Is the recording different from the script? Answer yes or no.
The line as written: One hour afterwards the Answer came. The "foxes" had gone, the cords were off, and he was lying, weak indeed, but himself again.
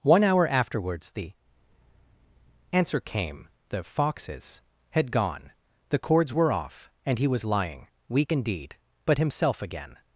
no